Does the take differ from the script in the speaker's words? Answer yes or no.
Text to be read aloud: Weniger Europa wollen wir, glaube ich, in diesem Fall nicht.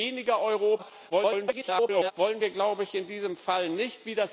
yes